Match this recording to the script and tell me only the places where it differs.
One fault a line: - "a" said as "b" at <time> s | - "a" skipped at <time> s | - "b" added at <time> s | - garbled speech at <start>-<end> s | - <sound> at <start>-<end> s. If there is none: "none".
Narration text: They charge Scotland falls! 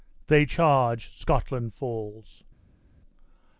none